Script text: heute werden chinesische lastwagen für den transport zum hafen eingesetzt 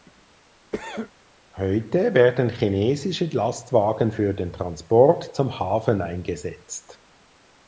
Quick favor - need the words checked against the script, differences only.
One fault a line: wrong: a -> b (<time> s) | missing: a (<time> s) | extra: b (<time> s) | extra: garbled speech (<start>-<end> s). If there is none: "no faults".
no faults